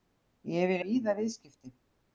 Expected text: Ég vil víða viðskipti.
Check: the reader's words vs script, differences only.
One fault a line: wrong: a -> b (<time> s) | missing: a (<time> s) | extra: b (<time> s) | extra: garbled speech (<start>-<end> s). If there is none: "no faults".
no faults